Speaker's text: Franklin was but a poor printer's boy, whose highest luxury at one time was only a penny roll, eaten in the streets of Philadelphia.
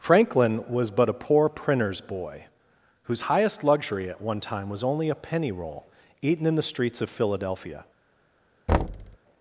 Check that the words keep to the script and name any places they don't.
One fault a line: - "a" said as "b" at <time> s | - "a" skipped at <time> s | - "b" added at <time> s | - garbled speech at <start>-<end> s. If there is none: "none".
none